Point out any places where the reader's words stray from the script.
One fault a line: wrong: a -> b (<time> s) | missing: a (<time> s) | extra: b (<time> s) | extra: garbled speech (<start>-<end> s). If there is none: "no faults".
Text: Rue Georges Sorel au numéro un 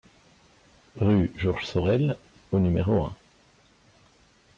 no faults